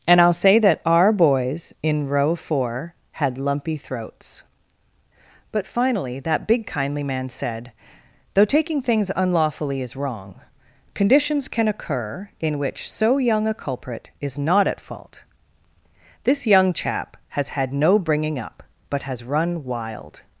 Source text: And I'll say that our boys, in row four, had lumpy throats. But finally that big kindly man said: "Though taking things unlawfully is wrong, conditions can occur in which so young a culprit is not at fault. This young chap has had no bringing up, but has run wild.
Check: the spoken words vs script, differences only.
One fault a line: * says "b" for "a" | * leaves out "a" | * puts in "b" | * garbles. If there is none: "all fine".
all fine